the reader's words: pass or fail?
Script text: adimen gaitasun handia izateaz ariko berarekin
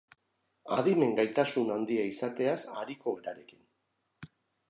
pass